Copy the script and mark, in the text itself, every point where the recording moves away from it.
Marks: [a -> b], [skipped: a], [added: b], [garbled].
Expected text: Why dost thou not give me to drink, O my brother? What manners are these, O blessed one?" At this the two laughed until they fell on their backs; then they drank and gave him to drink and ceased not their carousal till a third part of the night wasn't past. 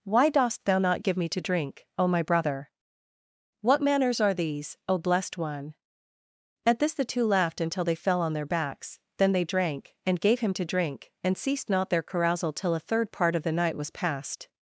Why dost thou not give me to drink, O my brother? What manners are these, O blessed one?" At this the two laughed until they fell on their backs; then they drank and gave him to drink and ceased not their carousal till a third part of the night [wasn't -> was] past.